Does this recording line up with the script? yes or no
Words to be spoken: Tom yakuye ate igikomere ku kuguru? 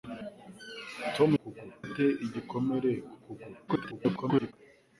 no